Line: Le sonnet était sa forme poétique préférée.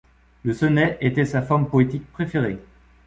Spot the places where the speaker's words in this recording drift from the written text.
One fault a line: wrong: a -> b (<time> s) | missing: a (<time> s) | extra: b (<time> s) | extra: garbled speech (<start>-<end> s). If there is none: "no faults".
no faults